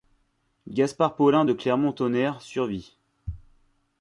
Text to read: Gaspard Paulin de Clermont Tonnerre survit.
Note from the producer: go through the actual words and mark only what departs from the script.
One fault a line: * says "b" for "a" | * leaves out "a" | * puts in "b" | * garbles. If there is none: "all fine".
all fine